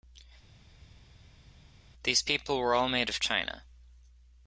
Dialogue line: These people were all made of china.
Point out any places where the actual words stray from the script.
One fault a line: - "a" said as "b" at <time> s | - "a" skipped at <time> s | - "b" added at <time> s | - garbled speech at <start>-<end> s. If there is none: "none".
none